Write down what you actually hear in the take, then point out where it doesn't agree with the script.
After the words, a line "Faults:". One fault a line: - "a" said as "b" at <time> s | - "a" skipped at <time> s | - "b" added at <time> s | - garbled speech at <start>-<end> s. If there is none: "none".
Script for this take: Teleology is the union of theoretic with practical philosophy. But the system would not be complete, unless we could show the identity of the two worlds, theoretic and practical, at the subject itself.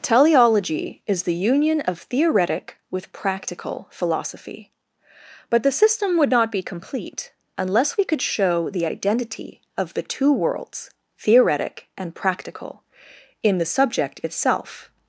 Teleology is the union of theoretic with practical philosophy. But the system would not be complete, unless we could show the identity of the two worlds, theoretic and practical, in the subject itself.
Faults:
- "at" said as "in" at 13.4 s